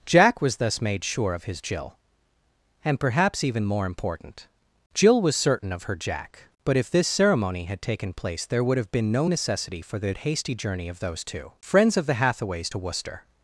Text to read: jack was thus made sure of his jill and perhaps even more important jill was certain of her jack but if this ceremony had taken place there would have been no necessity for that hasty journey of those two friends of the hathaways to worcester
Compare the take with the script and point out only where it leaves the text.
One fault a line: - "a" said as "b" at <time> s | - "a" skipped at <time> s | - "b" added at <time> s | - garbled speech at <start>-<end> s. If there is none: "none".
- "that" said as "the" at 10.0 s